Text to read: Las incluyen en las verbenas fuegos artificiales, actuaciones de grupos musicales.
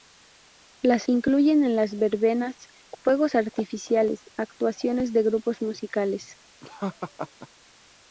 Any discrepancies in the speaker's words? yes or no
no